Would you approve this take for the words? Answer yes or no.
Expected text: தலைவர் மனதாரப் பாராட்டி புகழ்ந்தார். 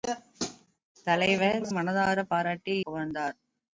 yes